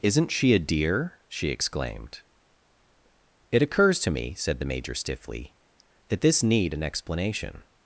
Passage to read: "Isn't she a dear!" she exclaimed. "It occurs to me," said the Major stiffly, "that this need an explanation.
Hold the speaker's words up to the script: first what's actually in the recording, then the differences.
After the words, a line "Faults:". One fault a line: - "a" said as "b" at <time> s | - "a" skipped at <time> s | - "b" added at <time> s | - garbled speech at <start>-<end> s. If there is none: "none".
"Isn't she a dear!" she exclaimed. "It occurs to me," said the Major stiffly, "that this need an explanation.
Faults:
none